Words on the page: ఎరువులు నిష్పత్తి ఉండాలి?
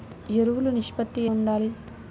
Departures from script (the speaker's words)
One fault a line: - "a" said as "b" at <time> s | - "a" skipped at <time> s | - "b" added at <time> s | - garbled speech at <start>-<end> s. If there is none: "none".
none